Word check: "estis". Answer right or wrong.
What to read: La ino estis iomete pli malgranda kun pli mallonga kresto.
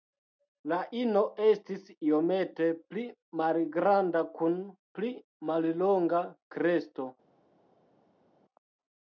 right